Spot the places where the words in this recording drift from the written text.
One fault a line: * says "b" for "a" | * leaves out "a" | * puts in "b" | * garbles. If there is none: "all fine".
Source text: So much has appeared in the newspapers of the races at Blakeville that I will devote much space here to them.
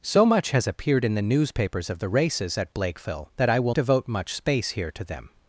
all fine